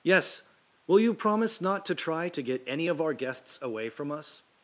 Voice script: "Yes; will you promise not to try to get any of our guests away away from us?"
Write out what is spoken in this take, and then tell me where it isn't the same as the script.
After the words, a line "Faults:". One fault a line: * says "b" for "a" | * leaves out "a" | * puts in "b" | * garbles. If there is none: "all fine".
"Yes; will you promise not to try to get any of our guests away from us?"
Faults:
* leaves out "away"